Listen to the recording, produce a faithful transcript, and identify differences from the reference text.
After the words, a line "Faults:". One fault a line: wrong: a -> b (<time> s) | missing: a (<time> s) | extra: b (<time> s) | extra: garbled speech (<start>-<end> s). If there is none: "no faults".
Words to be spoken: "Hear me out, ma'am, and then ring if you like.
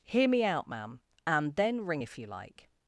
"Hear me out, ma'am, and then ring if you like.
Faults:
no faults